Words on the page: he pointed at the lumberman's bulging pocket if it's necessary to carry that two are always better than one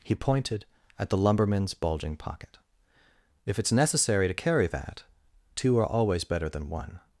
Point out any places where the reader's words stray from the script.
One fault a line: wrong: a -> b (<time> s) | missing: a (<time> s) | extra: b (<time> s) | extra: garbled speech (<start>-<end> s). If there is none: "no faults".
no faults